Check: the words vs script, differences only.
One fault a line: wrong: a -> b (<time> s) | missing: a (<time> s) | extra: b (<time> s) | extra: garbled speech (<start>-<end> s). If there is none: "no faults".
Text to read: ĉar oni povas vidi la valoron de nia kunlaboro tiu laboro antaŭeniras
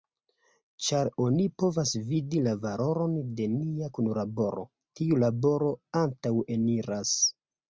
no faults